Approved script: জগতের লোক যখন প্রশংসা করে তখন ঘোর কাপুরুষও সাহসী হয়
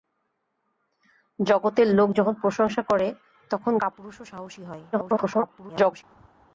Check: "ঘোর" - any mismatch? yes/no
yes